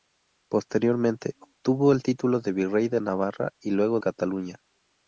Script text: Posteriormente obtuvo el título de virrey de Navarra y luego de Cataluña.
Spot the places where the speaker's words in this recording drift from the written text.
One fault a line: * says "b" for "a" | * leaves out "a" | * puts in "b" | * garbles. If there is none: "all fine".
* leaves out "de"